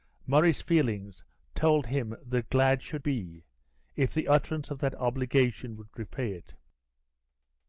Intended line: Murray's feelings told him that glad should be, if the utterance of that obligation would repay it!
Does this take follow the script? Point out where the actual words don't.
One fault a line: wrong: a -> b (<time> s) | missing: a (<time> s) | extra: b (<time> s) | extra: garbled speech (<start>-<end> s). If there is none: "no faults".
no faults